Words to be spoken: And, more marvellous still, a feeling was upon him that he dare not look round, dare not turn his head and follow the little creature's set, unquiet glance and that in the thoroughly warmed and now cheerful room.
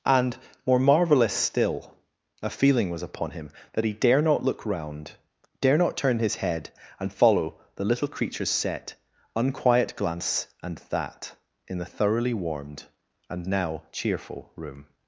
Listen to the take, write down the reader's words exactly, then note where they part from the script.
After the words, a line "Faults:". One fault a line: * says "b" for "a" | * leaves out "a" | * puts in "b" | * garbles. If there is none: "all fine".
And, more marvellous still, a feeling was upon him that he dare not look round, dare not turn his head and follow the little creature's set, unquiet glance and that in the thoroughly warmed and now cheerful room.
Faults:
all fine